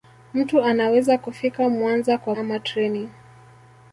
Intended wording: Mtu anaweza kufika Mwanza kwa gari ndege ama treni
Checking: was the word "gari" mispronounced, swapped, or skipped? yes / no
yes